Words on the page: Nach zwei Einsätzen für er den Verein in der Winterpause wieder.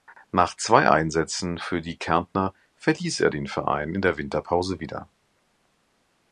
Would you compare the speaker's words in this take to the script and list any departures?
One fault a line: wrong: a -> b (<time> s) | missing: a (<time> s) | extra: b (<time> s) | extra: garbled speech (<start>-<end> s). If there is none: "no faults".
extra: die Kärntner verließ (1.8 s)